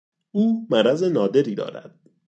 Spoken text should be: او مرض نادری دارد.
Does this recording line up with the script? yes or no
yes